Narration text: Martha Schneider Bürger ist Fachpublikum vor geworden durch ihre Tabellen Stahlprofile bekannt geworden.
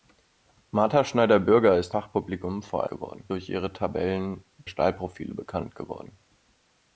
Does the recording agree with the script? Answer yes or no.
yes